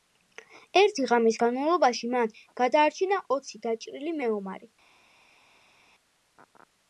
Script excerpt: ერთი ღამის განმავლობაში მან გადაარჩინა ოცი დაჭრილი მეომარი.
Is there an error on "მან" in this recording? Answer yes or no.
no